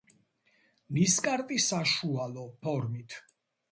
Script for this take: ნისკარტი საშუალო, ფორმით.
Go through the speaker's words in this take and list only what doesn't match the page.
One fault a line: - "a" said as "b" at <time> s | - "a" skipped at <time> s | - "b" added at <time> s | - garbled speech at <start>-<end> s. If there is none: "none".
none